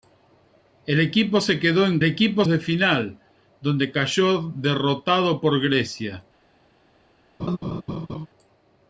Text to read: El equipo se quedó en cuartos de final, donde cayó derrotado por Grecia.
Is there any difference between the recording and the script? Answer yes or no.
yes